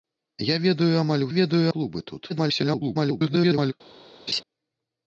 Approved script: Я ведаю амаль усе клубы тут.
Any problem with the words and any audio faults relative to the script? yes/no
yes